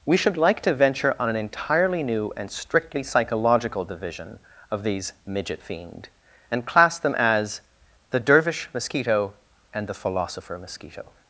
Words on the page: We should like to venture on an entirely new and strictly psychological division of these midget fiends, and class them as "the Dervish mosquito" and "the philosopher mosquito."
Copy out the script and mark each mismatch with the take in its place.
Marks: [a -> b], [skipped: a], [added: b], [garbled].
We should like to venture on an entirely new and strictly psychological division of these midget [fiends, -> fiend] and class them as "the Dervish mosquito" and "the philosopher mosquito."